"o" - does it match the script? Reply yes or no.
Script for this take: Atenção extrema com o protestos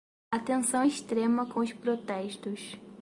no